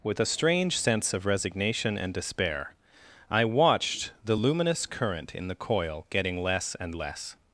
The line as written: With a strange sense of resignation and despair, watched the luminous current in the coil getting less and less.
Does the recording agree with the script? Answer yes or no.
no